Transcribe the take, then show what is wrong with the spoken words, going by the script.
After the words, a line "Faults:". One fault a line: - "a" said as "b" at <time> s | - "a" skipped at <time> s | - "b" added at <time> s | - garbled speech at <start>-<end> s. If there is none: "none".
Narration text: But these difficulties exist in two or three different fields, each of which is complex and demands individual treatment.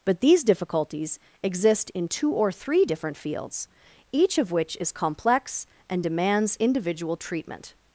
But these difficulties exist in two or three different fields, each of which is complex and demands individual treatment.
Faults:
none